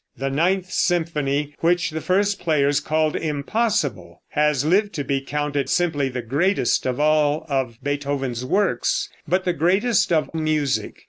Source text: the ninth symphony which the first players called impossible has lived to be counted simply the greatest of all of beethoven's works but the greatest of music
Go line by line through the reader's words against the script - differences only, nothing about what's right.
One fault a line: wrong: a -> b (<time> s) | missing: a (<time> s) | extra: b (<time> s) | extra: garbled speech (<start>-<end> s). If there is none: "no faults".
no faults